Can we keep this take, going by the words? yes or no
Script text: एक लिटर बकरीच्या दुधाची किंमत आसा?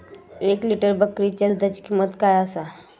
no